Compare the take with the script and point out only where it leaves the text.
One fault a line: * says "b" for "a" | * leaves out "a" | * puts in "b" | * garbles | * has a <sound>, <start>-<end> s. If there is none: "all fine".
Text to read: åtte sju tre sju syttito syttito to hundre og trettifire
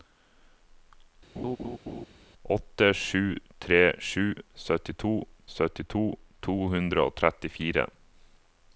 * has a laugh, 1.4-2.1 s